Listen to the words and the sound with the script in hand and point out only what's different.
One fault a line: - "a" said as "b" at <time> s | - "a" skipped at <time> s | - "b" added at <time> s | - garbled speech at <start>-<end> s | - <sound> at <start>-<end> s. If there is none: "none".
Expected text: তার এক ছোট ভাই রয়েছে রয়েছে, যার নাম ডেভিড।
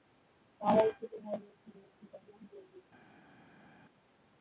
none